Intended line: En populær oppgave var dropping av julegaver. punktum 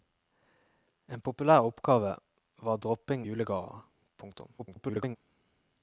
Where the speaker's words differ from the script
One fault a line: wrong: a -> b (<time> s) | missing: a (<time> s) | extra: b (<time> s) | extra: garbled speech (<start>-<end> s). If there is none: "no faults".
missing: av (3.3 s)
extra: garbled speech (4.6-5.2 s)